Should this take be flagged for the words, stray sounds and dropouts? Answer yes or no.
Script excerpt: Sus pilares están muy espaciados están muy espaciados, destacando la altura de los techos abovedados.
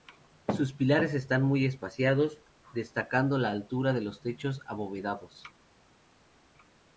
yes